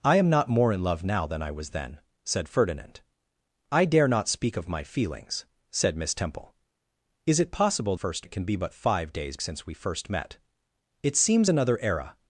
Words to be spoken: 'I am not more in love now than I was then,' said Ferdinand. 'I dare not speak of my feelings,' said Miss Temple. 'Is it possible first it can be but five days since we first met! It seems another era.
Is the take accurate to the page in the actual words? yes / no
yes